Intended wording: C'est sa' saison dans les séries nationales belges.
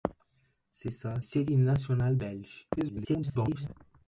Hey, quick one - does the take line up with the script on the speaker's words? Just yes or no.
no